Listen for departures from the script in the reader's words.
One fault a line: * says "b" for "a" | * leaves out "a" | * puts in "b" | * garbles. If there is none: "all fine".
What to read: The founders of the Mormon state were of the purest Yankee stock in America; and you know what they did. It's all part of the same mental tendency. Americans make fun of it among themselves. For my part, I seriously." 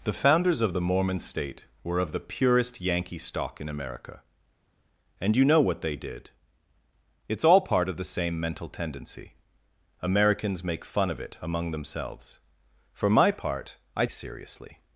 all fine